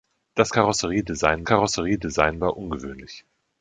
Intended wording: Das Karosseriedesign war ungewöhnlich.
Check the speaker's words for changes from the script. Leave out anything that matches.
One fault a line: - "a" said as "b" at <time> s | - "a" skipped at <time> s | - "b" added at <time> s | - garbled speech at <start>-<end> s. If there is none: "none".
- "Karosseriedesign" added at 1.4 s